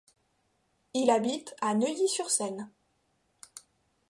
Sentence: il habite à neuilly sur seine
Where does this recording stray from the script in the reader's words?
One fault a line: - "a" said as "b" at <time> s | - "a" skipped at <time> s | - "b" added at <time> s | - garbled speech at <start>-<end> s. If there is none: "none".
none